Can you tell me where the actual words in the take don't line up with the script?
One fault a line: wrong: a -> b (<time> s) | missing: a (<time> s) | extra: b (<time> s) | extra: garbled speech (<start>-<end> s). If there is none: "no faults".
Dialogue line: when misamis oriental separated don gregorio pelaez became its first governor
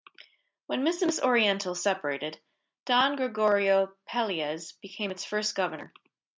no faults